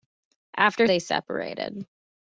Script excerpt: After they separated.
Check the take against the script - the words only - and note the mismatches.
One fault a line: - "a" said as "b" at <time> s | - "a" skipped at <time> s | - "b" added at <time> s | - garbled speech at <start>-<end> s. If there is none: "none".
none